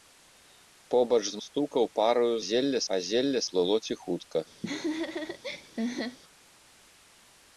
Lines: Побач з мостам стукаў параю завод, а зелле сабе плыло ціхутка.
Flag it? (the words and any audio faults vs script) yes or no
yes